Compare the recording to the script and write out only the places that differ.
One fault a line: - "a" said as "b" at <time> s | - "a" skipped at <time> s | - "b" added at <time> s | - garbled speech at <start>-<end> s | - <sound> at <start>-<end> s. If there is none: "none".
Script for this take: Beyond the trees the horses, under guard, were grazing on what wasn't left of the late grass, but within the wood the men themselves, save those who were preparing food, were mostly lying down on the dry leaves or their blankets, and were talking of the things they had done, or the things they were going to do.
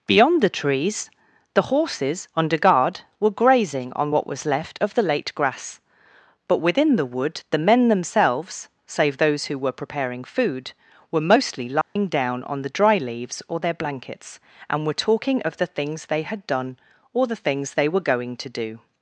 - "wasn't" said as "was" at 4.3 s
- dropout at 11.8-12.0 s